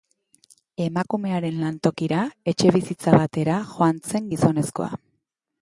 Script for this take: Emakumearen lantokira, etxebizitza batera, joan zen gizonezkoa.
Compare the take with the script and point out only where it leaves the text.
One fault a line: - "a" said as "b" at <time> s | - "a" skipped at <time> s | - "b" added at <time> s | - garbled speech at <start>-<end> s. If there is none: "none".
none